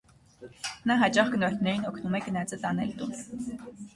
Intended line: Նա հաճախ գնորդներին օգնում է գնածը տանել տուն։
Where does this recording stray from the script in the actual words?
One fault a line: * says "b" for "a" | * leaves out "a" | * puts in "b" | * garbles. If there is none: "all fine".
all fine